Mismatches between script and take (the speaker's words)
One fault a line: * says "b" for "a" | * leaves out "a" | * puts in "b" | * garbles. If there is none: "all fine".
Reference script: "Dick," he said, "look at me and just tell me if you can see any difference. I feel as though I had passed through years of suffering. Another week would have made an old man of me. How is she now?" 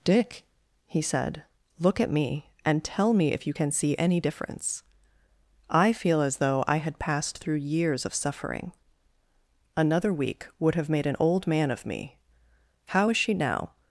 * leaves out "just"